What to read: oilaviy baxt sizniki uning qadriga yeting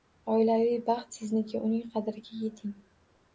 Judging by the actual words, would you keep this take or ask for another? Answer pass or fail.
pass